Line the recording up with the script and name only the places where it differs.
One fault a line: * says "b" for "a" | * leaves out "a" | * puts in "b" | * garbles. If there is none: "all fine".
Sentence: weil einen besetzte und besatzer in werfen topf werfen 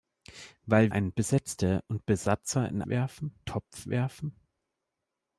all fine